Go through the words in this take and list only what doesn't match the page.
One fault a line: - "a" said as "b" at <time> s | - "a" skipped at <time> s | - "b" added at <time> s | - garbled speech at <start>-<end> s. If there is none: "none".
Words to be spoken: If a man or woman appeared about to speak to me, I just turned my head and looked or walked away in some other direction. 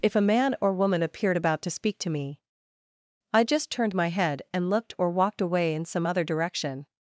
none